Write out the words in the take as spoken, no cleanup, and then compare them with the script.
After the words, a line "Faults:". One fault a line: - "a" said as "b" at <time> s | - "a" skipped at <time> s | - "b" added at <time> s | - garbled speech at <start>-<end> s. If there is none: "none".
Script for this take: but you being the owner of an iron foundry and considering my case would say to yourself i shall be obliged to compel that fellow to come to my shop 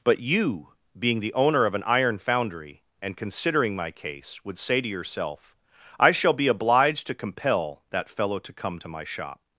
but you being the owner of an iron foundry and considering my case would say to yourself i shall be obliged to compel that fellow to come to my shop
Faults:
none